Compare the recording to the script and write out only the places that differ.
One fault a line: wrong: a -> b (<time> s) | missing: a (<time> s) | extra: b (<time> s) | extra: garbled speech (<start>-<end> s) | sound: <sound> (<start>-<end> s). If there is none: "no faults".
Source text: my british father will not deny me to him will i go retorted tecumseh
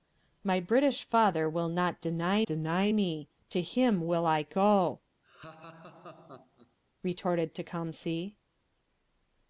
extra: deny (2.5 s)
sound: laugh (5.2-6.8 s)